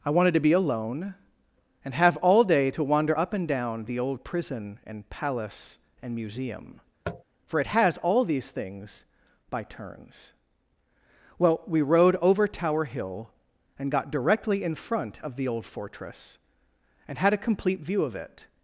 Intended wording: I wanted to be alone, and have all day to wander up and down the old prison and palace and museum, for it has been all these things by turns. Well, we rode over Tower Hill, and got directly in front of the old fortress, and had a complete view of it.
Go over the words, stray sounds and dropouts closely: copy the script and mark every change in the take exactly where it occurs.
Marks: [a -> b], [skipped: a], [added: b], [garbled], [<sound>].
I wanted to be alone, and have all day to wander up and down the old prison and palace and museum, [tap] for it has [skipped: been] all these things by turns. Well, we rode over Tower Hill, and got directly in front of the old fortress, and had a complete view of it.